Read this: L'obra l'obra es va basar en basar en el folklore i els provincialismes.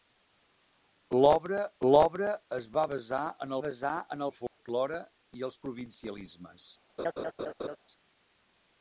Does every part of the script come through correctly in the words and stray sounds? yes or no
no